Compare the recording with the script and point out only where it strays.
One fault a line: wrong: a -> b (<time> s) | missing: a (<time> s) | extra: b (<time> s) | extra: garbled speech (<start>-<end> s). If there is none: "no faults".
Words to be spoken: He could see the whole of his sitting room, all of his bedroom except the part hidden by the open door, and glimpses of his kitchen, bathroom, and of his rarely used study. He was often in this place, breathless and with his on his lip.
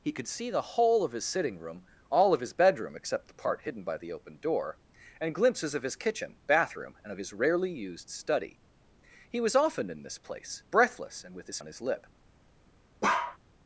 no faults